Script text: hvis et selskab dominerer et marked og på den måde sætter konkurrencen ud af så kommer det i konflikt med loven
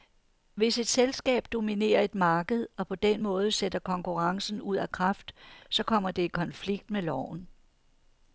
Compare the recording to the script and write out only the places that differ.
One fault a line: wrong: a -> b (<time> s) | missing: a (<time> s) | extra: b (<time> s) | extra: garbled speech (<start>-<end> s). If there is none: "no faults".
extra: kraft (4.9 s)